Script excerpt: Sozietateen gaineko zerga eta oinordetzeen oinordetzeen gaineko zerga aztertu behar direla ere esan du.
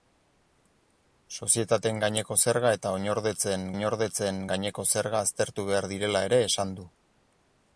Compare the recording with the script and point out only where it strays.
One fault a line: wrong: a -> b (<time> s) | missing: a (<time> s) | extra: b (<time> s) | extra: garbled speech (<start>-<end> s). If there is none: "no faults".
no faults